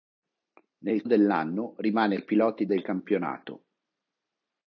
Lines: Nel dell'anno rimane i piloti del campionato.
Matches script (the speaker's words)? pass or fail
pass